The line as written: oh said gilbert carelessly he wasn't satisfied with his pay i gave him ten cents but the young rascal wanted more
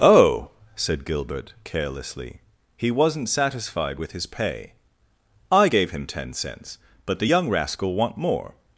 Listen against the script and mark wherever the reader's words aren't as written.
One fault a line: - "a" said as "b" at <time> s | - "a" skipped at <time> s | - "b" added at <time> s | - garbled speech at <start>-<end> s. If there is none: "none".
- "wanted" said as "want" at 7.9 s